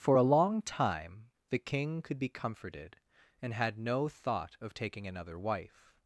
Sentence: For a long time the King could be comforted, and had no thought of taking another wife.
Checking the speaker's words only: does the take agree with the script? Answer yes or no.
yes